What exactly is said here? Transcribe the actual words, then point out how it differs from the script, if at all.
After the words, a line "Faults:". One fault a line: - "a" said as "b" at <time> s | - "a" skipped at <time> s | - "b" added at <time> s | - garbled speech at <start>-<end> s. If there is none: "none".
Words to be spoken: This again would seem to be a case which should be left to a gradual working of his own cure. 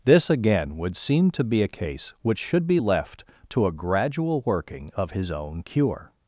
This again would seem to be a case which should be left to a gradual working of his own cure.
Faults:
none